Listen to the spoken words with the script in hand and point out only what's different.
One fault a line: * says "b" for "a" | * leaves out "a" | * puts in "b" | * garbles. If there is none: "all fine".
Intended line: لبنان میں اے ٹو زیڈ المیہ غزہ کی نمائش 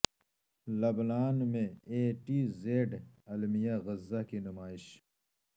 all fine